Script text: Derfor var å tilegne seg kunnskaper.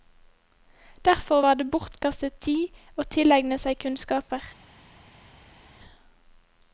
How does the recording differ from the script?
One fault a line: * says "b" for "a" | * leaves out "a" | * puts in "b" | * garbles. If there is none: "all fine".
* puts in "det bortkastet tid"